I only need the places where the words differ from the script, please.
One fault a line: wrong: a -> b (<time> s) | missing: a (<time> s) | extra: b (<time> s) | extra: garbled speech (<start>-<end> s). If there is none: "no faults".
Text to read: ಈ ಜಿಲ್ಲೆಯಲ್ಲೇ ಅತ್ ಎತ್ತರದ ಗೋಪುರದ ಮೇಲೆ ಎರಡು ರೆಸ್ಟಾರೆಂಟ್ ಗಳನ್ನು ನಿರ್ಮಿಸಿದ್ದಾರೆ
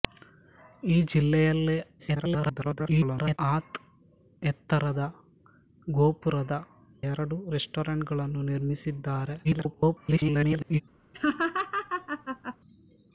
extra: garbled speech (2.0-3.4 s)
missing: ಮೇಲೆ (6.6 s)
extra: garbled speech (9.4-10.8 s)